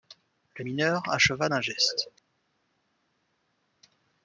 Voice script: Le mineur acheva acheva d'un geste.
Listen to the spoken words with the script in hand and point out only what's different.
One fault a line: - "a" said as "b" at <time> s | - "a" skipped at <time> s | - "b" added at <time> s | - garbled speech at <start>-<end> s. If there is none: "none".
- "acheva" skipped at 1.5 s